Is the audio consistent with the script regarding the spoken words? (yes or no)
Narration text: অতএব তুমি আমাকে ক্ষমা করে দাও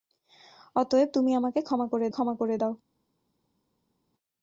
no